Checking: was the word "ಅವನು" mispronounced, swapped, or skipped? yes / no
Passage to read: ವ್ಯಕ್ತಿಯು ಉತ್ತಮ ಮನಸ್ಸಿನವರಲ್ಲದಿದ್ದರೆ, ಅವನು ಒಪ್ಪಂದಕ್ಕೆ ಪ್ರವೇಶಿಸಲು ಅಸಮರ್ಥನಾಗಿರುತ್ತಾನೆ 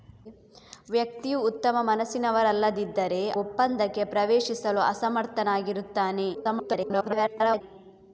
yes